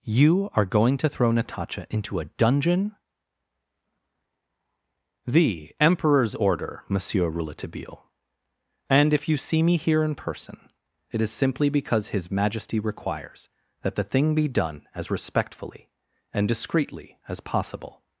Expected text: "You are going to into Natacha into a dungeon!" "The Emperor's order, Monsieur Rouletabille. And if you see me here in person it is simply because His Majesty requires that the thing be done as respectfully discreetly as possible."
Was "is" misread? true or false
false